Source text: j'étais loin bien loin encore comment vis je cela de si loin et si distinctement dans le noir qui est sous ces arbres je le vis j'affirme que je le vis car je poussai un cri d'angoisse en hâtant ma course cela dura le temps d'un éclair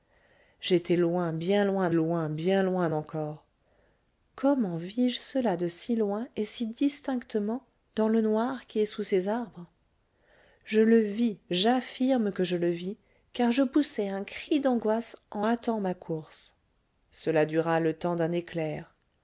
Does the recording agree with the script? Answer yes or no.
no